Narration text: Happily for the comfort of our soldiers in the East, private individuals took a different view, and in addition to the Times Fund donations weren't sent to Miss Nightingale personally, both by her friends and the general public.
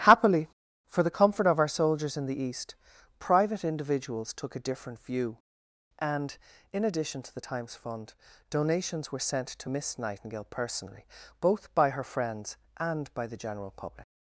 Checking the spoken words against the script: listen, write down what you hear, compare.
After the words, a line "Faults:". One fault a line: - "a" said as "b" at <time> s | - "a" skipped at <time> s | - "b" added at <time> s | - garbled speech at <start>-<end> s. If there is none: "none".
Happily for the comfort of our soldiers in the East, private individuals took a different view, and in addition to the Times Fund donations were sent to Miss Nightingale personally, both by her friends and by the general public.
Faults:
- "weren't" said as "were" at 9.1 s
- "by" added at 13.1 s